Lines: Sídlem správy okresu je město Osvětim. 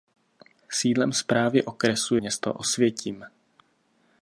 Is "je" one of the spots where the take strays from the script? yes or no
yes